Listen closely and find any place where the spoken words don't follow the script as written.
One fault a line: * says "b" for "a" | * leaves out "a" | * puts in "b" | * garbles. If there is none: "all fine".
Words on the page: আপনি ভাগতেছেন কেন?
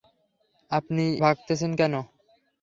all fine